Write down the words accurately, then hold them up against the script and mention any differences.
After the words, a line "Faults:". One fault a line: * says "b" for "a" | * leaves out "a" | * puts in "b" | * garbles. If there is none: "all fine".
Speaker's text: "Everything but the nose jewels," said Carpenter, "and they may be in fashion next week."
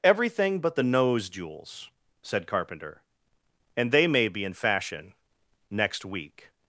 "Everything but the nose jewels," said Carpenter, "and they may be in fashion next week."
Faults:
all fine